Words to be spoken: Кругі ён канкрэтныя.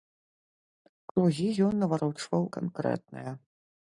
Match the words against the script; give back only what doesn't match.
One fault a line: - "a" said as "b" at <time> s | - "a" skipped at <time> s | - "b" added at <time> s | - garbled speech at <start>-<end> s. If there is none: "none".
- "наварочваў" added at 1.8 s